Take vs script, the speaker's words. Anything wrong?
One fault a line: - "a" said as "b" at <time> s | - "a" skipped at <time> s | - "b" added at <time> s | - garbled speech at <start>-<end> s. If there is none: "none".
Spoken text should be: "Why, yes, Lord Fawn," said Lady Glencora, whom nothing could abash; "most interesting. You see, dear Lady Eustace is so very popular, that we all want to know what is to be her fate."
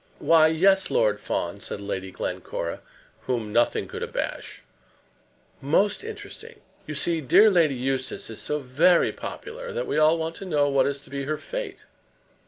none